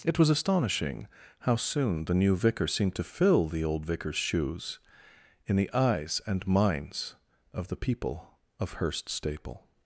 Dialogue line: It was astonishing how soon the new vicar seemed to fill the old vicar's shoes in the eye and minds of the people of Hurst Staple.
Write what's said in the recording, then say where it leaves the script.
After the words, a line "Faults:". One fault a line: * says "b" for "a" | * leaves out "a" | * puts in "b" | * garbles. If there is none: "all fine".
It was astonishing how soon the new vicar seemed to fill the old vicar's shoes in the eyes and minds of the people of Hurst Staple.
Faults:
* says "eyes" for "eye"